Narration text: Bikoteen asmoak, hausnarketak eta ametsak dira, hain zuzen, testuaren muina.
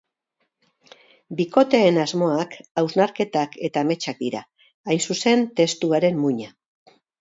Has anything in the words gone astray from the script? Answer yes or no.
no